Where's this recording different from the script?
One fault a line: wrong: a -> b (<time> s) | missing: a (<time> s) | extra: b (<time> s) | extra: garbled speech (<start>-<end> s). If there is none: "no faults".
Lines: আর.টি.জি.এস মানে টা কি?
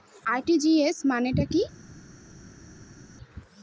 no faults